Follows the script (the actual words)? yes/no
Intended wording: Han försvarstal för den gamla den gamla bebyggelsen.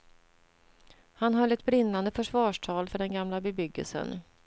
no